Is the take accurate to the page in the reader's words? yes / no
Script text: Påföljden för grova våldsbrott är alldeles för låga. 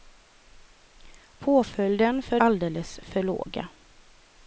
no